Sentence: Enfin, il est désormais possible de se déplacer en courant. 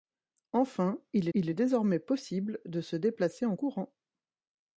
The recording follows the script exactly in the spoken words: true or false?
false